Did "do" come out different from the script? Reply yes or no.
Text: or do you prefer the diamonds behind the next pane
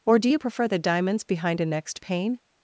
no